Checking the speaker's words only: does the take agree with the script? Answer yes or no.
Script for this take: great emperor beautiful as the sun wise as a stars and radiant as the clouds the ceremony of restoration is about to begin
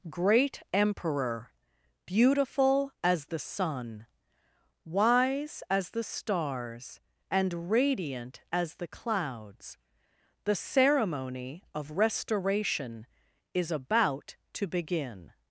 no